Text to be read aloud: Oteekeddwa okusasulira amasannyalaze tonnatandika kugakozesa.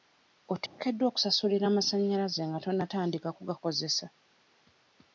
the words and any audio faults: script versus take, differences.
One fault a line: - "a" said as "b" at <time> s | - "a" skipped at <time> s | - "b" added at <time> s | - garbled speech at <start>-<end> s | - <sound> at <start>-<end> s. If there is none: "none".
- dropout at 0.7-0.8 s
- "nga" added at 2.5 s